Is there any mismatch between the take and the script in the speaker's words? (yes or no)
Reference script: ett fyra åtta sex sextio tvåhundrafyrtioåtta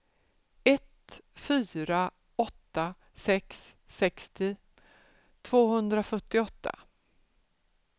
no